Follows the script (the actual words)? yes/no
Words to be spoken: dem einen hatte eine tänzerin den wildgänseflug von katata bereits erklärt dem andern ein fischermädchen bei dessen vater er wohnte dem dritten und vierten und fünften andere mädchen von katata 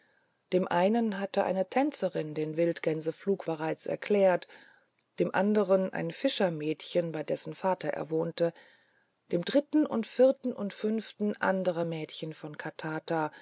no